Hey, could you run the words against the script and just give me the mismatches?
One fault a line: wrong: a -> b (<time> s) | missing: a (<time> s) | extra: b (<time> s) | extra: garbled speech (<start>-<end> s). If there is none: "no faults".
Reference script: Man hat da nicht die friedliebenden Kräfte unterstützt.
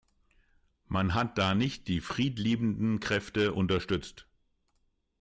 no faults